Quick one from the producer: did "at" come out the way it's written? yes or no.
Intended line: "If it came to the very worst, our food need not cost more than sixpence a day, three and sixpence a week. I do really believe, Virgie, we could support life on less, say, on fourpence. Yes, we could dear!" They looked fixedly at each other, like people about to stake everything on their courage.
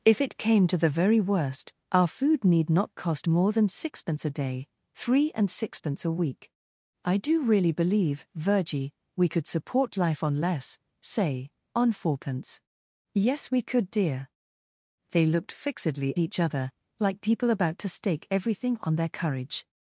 no